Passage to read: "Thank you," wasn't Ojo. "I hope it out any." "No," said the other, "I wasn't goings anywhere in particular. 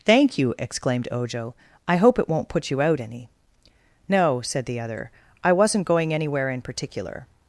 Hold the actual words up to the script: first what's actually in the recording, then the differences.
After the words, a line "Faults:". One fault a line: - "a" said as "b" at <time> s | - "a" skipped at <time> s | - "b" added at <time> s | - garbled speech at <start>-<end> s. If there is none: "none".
"Thank you," exclaimed Ojo. "I hope it won't put you out any." "No," said the other, "I wasn't going anywhere in particular.
Faults:
- "wasn't" said as "exclaimed" at 0.6 s
- "won't put you" added at 2.3 s
- "goings" said as "going" at 5.8 s